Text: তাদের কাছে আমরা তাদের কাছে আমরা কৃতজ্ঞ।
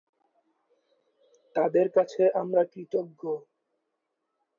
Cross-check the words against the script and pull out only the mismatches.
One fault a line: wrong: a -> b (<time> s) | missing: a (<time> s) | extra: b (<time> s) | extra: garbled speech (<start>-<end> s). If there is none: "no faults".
missing: তাদের কাছে আমরা (2.6 s)